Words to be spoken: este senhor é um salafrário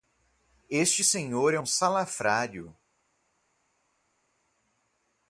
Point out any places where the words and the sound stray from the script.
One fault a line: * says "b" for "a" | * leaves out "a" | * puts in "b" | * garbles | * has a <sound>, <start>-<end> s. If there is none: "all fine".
all fine